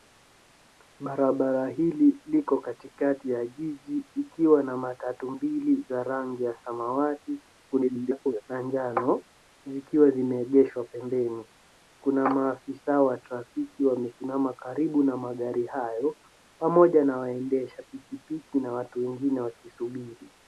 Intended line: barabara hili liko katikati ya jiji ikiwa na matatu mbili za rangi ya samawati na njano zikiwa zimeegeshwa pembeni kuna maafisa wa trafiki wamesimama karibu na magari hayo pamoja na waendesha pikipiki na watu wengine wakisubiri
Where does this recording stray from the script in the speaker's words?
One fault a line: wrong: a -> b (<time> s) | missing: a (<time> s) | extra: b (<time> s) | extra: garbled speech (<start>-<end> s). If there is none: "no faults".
extra: garbled speech (7.7-8.4 s)